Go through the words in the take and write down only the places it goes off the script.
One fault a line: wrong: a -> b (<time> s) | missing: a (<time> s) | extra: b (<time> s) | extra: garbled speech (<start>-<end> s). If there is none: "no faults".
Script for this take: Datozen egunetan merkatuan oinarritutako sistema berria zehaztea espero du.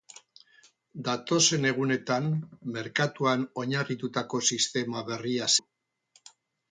missing: zehaztea espero (5.5 s)